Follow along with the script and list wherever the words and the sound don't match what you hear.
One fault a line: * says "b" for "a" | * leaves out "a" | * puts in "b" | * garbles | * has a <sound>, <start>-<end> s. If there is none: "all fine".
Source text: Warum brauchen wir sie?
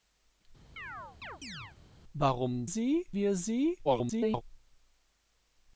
* has a chirp, 0.8-1.8 s
* says "sie" for "brauchen"
* garbles